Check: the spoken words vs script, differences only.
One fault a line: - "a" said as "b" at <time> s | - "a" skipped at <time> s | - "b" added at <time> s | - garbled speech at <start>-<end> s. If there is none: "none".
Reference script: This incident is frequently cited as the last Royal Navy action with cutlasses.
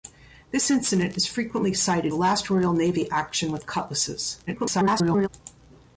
- "as" skipped at 2.1 s
- garbled speech at 4.5-5.3 s